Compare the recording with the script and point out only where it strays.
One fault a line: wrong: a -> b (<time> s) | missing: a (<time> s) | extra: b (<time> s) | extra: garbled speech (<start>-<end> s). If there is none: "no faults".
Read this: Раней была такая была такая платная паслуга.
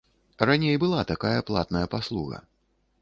missing: была такая (1.4 s)